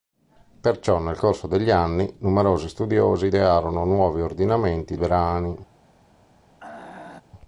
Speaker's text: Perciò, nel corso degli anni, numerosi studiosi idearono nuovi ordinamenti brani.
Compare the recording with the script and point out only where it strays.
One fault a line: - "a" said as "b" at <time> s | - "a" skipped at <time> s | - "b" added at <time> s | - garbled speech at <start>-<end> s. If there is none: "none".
none